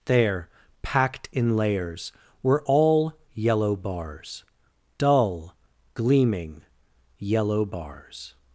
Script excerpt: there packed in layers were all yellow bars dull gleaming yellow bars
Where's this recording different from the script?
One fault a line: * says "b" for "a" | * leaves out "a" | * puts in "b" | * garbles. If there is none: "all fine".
all fine